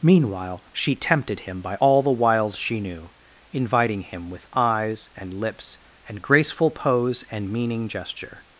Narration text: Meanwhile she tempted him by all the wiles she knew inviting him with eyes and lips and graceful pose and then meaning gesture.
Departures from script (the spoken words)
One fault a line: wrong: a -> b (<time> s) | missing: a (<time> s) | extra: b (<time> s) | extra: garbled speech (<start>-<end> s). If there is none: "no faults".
missing: then (7.5 s)